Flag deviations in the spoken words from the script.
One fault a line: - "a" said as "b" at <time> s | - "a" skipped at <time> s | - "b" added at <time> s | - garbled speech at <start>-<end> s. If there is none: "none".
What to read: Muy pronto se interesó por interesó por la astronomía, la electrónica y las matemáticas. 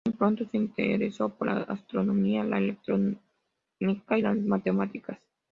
- "interesó por" skipped at 1.5 s